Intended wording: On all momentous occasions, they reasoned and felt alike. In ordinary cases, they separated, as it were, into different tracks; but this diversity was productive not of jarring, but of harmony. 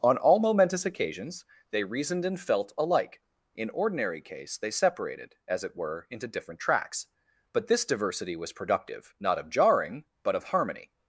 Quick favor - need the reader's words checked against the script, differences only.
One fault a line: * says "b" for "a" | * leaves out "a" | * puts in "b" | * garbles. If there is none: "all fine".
* says "case" for "cases"